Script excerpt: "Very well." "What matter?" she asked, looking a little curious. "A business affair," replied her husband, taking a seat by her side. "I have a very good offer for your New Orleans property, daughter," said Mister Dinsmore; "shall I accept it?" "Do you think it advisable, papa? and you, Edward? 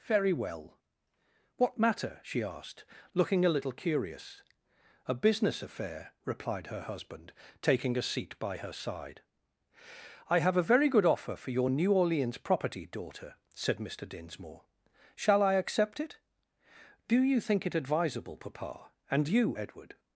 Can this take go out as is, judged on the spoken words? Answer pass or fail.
pass